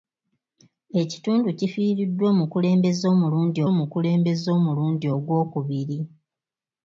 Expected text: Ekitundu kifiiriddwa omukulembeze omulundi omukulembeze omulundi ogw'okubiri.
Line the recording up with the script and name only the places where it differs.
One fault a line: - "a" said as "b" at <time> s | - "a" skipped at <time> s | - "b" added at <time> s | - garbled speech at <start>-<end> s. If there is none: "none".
none